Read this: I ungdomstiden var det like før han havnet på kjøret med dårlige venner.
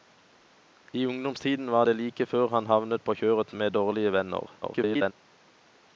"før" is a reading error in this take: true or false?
false